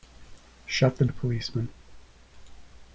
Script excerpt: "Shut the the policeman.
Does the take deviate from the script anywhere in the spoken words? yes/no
no